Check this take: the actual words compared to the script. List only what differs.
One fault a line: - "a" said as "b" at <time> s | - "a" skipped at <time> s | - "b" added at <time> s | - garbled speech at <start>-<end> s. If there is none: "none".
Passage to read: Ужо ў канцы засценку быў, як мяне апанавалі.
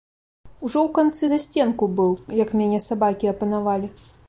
- "сабакі" added at 2.9 s